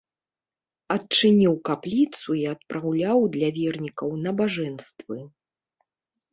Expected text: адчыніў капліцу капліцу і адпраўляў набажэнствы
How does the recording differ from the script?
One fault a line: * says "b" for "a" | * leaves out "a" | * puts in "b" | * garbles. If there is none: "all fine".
* leaves out "капліцу"
* puts in "для вернікаў"